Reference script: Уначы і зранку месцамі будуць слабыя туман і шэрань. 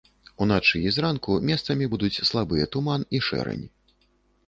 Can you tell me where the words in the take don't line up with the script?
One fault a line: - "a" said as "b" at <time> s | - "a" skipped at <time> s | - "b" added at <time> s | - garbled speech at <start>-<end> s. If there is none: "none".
none